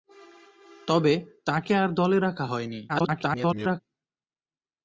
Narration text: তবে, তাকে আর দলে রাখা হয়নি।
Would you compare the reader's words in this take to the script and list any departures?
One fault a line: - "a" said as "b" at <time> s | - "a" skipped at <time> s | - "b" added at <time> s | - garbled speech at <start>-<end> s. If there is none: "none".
- garbled speech at 2.9-3.8 s